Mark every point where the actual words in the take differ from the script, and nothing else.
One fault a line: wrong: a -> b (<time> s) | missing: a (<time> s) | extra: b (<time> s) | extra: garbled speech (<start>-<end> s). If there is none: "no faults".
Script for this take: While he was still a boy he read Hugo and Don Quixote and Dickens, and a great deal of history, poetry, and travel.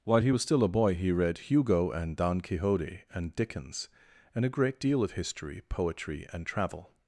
no faults